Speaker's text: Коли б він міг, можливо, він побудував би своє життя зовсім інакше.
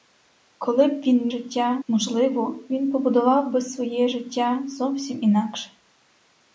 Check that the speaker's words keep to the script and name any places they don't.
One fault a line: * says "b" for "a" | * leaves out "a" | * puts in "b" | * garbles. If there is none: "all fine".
* says "життя" for "міг"